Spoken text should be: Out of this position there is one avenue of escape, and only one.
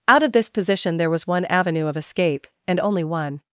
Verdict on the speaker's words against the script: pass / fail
fail